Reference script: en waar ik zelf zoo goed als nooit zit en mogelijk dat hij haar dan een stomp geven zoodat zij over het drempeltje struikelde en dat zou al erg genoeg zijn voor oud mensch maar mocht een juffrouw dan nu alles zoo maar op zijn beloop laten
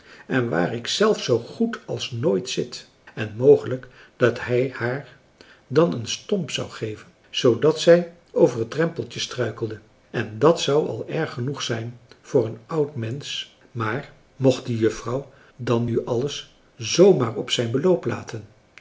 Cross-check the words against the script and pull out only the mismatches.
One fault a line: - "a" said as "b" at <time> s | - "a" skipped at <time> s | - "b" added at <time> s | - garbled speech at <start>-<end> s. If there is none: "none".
- "zou" added at 6.5 s
- "een" added at 12.4 s
- "een" said as "de" at 14.7 s